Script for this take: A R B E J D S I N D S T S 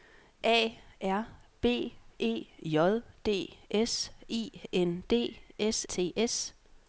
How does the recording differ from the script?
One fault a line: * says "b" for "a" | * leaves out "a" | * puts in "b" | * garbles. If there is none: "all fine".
all fine